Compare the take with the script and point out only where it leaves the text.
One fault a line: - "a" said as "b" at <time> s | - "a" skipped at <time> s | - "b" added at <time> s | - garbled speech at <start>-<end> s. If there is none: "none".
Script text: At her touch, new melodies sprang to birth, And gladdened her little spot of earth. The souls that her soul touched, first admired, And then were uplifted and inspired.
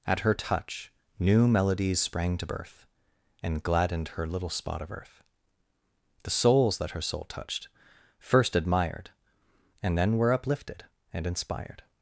none